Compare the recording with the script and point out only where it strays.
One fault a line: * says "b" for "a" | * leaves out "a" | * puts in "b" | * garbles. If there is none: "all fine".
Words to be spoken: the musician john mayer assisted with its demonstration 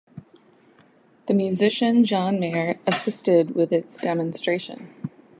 all fine